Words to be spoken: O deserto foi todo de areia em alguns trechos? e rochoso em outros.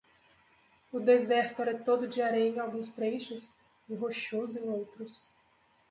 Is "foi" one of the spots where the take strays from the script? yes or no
yes